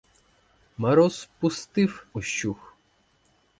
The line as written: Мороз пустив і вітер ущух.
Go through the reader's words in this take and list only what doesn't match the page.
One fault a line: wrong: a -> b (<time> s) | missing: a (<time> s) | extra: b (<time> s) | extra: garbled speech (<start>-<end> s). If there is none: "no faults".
missing: і вітер (2.1 s)